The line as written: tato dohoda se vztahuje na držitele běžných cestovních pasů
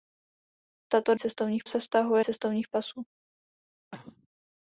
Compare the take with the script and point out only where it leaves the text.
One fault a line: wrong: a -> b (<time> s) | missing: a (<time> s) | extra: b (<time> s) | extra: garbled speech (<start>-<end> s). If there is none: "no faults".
wrong: dohoda -> cestovních (1.2 s)
missing: na držitele běžných (2.2 s)